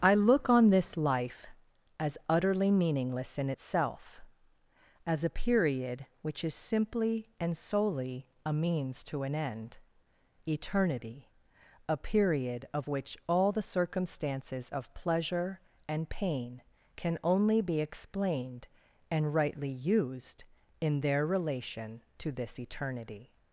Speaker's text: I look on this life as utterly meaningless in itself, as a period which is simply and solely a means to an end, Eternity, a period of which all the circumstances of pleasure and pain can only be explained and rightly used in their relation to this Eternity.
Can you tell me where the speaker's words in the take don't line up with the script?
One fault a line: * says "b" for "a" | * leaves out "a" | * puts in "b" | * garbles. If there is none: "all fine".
all fine